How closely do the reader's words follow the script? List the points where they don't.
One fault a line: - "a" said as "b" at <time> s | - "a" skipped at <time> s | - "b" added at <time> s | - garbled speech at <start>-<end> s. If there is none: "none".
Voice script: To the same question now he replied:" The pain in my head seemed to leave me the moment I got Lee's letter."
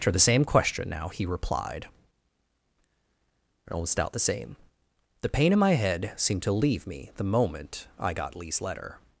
- "almost out the same" added at 3.7 s